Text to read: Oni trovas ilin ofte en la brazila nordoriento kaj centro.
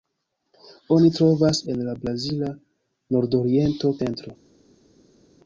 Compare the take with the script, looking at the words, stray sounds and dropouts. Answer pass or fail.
fail